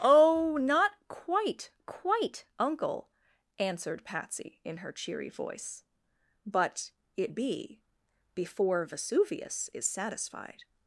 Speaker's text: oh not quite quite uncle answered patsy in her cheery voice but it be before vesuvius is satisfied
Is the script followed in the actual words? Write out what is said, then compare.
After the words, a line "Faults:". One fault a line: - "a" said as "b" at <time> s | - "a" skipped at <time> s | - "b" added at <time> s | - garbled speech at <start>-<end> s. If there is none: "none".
oh not quite quite uncle answered patsy in her cheery voice but it be before vesuvius is satisfied
Faults:
none